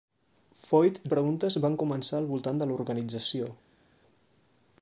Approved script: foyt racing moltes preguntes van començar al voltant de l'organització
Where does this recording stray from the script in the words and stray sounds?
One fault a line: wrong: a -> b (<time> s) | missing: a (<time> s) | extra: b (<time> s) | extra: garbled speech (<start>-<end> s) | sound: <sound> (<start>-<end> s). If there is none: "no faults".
missing: racing moltes (0.9 s)